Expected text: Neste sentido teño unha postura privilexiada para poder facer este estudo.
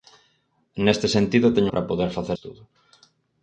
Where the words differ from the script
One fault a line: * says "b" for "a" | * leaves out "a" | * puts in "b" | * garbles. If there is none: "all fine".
* leaves out "unha postura privilexiada"
* leaves out "este"